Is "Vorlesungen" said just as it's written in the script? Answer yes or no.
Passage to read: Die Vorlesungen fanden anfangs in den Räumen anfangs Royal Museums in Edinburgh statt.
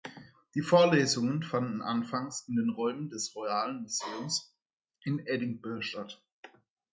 yes